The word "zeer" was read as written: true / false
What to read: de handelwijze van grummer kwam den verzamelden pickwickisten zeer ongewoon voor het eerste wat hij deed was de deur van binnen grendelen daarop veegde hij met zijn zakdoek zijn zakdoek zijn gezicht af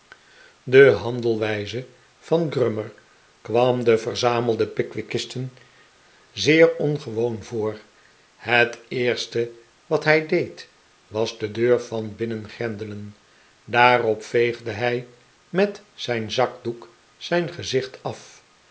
true